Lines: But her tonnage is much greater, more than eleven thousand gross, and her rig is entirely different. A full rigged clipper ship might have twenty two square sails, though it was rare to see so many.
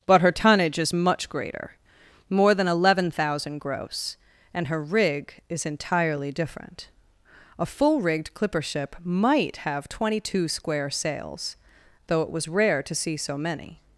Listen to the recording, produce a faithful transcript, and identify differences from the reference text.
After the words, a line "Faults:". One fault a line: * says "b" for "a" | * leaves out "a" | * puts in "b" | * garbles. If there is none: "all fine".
But her tonnage is much greater, more than eleven thousand gross, and her rig is entirely different. A full rigged clipper ship might have twenty two square sails, though it was rare to see so many.
Faults:
all fine